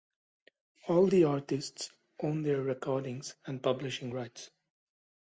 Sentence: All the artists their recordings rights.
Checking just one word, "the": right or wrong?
right